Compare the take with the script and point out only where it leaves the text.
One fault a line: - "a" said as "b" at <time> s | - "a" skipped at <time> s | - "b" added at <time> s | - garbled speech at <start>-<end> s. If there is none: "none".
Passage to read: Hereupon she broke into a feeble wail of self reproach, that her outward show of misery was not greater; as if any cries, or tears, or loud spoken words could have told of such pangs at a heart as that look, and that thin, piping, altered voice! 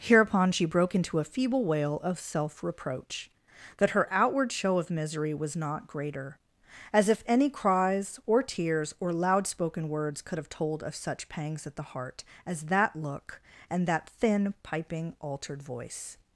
- "a" said as "the" at 11.8 s